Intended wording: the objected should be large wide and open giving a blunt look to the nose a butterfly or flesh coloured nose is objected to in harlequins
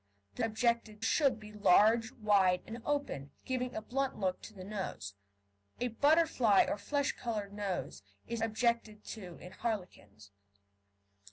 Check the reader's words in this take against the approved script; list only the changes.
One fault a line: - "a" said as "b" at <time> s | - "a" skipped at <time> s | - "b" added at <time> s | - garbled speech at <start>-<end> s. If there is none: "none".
none